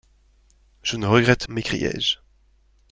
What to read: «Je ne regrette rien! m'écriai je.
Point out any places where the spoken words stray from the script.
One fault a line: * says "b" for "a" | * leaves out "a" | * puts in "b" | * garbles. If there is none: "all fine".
* leaves out "rien"